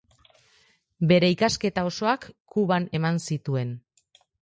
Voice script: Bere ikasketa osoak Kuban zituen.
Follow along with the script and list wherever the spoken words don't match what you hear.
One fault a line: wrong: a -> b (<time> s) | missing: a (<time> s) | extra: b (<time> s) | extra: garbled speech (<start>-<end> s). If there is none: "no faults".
extra: eman (3.0 s)